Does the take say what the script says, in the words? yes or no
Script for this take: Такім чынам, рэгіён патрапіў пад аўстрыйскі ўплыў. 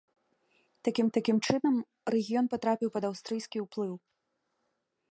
no